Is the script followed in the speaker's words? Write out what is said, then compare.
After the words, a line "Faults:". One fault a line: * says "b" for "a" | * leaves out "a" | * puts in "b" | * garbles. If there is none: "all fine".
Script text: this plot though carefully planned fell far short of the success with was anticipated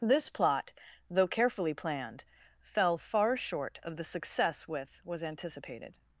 this plot though carefully planned fell far short of the success with was anticipated
Faults:
all fine